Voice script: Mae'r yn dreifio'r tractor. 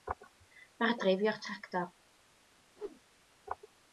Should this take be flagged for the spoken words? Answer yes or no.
no